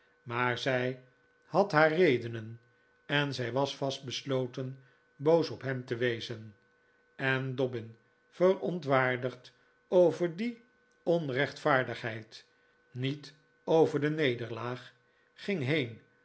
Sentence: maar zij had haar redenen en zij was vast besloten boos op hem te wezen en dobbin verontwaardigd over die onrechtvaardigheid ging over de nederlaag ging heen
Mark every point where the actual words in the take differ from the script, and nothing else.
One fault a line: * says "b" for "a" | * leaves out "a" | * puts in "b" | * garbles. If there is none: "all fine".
* says "niet" for "ging"